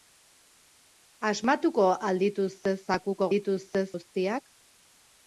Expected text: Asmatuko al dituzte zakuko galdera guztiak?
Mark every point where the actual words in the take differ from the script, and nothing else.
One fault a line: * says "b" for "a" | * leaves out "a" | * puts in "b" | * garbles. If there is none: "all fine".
* says "dituzte" for "galdera"